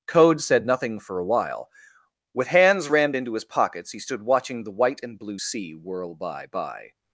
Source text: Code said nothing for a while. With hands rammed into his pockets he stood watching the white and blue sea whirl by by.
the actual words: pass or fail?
pass